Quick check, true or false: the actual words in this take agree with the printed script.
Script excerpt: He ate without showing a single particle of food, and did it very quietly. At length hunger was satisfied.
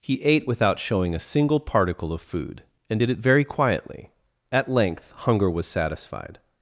true